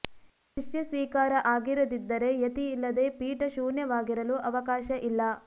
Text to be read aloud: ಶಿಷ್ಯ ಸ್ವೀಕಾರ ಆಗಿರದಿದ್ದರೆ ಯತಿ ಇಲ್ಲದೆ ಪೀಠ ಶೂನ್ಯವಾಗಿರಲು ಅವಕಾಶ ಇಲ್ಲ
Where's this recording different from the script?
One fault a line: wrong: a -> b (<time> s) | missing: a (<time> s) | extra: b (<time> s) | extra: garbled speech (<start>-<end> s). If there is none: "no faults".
no faults